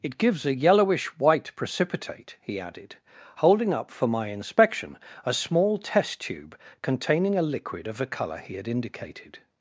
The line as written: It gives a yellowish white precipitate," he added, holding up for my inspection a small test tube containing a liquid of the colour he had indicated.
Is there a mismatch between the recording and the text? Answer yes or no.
no